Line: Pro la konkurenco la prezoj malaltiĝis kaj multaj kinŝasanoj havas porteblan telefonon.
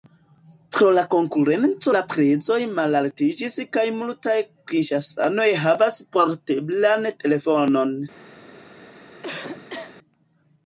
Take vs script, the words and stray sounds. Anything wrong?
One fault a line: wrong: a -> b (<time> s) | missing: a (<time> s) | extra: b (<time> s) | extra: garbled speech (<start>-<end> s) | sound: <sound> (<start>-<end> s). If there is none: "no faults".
sound: cough (9.2-9.9 s)